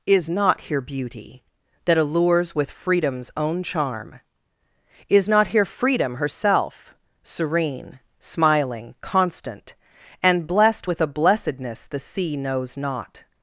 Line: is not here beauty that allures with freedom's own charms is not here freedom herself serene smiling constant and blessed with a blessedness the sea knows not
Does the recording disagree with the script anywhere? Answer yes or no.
yes